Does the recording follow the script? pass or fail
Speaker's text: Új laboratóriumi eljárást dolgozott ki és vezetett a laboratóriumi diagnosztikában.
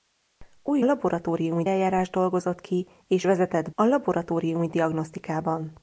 pass